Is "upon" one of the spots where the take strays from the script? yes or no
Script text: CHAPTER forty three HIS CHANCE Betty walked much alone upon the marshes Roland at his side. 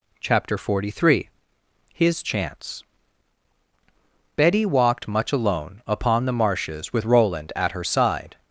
no